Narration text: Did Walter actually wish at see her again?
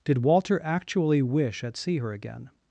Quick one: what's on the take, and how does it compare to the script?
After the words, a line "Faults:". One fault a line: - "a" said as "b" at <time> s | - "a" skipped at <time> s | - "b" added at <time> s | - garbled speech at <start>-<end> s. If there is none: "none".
Did Walter actually wish at see her again?
Faults:
none